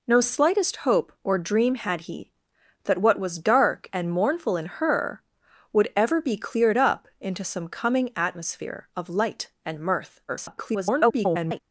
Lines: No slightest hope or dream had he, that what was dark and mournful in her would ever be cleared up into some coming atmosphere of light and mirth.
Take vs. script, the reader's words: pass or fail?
fail